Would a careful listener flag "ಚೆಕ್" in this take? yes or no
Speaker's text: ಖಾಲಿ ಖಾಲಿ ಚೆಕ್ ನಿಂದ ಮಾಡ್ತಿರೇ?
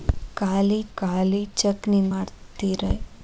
no